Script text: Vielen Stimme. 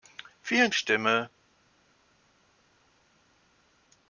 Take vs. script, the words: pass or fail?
pass